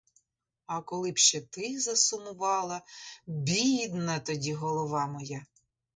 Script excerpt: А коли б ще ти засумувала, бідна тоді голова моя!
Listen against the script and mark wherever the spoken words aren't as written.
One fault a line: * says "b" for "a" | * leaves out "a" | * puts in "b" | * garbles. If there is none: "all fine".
all fine